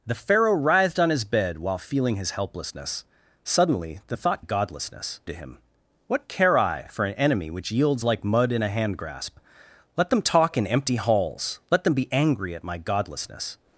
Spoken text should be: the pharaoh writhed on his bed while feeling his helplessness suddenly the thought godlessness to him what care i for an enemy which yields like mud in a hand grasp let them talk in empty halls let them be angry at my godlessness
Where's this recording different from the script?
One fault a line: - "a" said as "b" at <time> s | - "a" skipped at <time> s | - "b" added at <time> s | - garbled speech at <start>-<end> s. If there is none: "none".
none